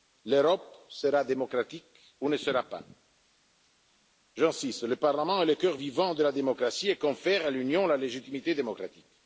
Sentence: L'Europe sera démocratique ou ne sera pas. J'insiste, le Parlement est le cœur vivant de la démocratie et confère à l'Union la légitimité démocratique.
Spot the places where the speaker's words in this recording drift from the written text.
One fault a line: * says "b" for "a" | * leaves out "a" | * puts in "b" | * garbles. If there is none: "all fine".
all fine